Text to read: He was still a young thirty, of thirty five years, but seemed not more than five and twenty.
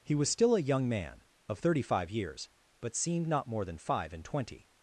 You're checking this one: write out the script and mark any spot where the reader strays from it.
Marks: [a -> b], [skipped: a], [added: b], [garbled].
He was still a young [thirty, -> man] of thirty five years, but seemed not more than five and twenty.